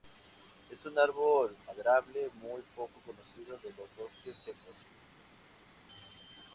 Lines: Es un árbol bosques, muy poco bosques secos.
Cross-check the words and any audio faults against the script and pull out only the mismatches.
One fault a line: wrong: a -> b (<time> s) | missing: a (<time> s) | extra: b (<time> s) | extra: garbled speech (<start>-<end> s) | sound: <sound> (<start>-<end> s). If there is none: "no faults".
wrong: bosques -> maderable (1.7 s)
extra: conocido de los (3.0 s)